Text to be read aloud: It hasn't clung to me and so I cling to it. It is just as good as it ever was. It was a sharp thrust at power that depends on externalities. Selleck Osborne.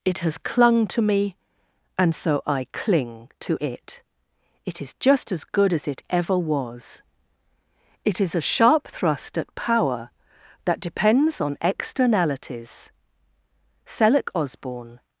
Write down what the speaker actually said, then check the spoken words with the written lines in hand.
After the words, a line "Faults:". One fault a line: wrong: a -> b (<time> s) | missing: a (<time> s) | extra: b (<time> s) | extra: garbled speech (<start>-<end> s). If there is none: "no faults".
It has clung to me and so I cling to it. It is just as good as it ever was. It is a sharp thrust at power that depends on externalities. Selleck Osborne.
Faults:
wrong: hasn't -> has (0.2 s)
wrong: was -> is (8.2 s)